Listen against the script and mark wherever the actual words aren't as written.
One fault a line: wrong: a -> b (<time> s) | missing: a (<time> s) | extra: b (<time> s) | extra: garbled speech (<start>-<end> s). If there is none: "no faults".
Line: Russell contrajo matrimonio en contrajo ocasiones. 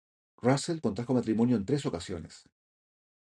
wrong: contrajo -> tres (1.6 s)